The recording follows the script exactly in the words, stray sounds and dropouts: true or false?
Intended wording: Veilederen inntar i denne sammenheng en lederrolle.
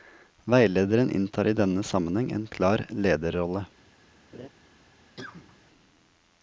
false